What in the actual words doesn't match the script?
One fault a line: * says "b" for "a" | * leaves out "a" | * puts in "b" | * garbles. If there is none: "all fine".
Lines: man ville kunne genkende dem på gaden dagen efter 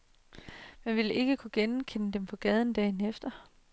* puts in "ikke"